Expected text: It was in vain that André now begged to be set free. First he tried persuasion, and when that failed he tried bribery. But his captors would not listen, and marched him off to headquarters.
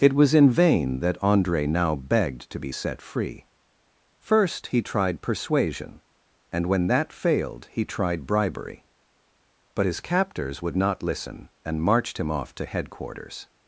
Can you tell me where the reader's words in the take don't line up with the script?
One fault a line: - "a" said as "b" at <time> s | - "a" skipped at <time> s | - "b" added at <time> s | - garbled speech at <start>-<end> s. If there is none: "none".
none